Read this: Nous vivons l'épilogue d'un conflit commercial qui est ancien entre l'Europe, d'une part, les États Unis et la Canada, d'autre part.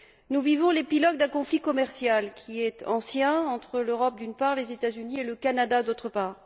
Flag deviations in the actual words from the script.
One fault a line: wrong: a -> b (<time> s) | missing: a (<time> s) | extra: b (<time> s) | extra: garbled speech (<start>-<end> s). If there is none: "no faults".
wrong: la -> le (5.2 s)